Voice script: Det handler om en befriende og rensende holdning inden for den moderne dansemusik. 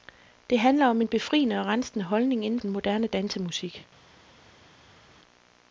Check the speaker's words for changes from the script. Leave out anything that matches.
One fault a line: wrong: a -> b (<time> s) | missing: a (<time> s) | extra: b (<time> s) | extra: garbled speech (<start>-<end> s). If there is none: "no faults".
missing: for (2.6 s)